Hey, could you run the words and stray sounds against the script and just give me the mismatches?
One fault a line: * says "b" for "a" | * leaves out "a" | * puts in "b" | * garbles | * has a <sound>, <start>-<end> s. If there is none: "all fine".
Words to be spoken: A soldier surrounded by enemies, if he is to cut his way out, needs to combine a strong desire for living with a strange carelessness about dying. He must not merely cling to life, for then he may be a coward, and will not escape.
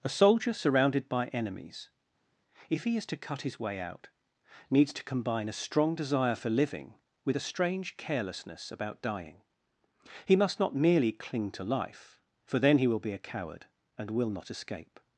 * says "will" for "may"